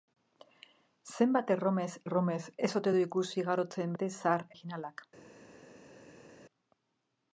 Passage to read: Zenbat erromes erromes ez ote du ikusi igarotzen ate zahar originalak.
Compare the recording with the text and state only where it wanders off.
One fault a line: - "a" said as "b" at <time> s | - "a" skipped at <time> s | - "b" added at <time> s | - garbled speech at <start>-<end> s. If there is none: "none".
none